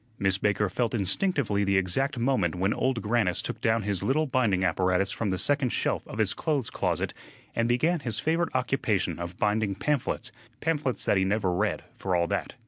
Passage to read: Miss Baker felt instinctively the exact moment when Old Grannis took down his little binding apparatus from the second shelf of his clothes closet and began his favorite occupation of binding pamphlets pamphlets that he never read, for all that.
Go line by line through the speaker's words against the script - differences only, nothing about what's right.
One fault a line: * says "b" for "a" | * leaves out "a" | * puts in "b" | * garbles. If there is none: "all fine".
all fine